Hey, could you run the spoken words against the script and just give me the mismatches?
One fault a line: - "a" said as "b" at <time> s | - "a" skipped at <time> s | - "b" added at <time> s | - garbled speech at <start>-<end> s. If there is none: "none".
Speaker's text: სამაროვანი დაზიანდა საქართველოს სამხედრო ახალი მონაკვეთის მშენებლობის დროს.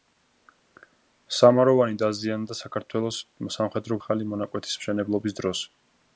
none